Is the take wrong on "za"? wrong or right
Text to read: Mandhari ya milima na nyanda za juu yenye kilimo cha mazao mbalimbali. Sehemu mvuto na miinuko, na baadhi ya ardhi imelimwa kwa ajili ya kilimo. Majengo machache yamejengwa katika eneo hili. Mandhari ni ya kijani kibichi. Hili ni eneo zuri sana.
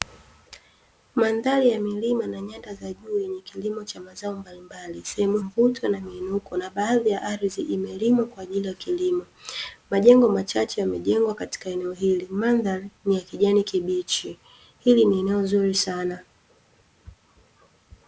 right